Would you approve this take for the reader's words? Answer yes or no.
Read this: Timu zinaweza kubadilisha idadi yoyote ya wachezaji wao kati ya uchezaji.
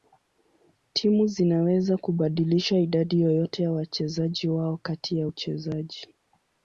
yes